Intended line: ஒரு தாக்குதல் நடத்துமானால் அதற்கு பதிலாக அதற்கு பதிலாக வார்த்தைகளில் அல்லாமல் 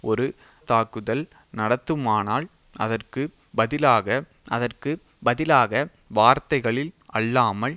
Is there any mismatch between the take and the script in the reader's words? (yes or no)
no